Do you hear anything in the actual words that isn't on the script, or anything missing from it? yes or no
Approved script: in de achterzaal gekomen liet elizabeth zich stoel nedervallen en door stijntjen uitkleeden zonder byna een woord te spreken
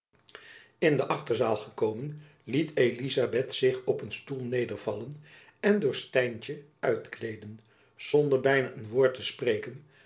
yes